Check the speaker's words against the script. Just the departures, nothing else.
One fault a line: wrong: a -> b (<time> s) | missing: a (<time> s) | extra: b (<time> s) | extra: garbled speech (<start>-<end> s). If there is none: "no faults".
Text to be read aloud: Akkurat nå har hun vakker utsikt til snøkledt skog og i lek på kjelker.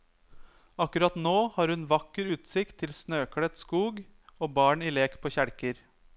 extra: barn (4.6 s)